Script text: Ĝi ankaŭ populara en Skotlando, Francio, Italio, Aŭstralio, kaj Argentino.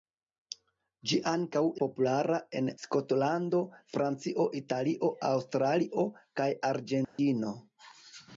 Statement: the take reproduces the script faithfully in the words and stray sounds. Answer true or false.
false